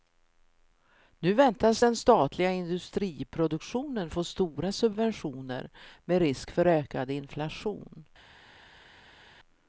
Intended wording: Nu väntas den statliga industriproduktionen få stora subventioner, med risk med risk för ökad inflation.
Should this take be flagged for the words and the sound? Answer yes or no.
yes